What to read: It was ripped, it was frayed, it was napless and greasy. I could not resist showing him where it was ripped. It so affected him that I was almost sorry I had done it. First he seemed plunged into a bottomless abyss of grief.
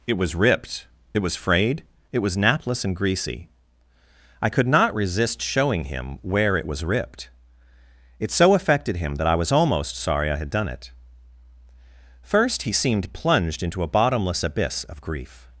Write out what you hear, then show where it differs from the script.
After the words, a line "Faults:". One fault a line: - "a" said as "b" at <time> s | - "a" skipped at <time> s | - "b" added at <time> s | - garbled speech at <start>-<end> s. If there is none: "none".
It was ripped, it was frayed, it was napless and greasy. I could not resist showing him where it was ripped. It so affected him that I was almost sorry I had done it. First he seemed plunged into a bottomless abyss of grief.
Faults:
none